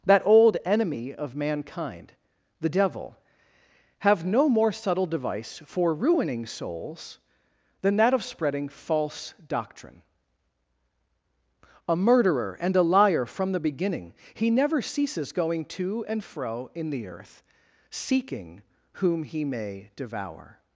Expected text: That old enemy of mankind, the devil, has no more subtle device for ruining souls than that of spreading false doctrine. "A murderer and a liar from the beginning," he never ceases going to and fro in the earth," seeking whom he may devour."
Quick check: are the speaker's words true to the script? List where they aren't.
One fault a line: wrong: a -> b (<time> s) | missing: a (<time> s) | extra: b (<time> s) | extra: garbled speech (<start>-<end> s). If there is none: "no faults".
wrong: has -> have (4.0 s)